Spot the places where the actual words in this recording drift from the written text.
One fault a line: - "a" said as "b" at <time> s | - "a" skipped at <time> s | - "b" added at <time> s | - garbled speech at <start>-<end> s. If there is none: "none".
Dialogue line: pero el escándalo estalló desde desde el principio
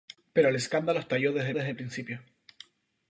none